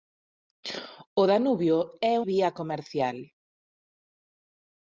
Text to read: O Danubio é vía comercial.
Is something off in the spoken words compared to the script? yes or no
no